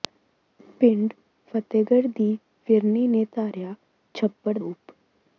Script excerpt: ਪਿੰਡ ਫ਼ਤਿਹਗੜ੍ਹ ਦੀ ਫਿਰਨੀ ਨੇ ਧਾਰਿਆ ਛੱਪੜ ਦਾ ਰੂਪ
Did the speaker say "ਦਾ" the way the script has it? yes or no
no